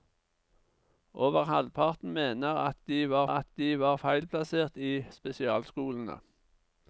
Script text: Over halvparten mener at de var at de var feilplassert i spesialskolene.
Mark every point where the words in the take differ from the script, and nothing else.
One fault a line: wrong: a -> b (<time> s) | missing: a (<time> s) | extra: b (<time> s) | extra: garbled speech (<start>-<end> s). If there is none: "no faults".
no faults